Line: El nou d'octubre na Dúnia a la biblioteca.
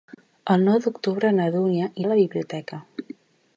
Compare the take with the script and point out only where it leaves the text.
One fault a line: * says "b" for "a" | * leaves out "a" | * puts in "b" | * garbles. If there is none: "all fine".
all fine